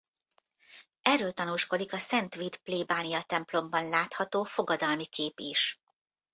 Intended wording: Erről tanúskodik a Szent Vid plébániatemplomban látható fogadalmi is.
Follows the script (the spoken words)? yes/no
no